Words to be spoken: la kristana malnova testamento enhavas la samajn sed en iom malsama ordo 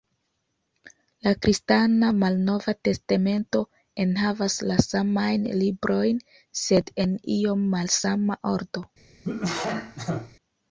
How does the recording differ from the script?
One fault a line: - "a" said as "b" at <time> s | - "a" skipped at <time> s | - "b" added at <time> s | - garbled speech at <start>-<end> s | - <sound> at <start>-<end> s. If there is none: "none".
- "librojn" added at 5.6 s
- cough at 9.2-10.4 s